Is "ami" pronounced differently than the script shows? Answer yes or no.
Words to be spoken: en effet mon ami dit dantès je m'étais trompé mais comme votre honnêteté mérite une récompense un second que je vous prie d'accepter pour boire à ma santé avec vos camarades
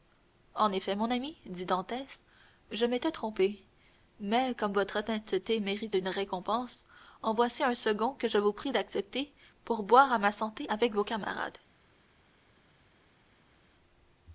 no